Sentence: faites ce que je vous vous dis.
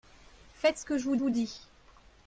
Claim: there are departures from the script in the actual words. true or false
false